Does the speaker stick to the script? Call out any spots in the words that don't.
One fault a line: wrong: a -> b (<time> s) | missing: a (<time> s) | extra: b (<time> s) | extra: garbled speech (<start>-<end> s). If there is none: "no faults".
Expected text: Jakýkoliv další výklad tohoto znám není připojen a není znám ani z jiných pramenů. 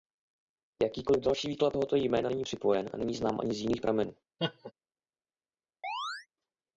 wrong: znám -> jména (2.0 s)